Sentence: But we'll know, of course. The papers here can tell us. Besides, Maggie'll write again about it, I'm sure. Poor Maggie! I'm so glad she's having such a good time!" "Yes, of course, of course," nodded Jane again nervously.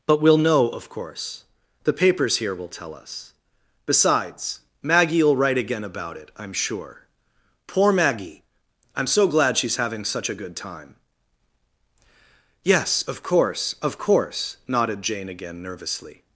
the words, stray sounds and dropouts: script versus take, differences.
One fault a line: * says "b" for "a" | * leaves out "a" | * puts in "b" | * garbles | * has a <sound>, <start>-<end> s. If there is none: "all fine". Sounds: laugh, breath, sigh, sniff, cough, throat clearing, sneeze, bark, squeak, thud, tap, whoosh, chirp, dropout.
* says "will" for "can"